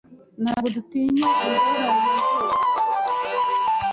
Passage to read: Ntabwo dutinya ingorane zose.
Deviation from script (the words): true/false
false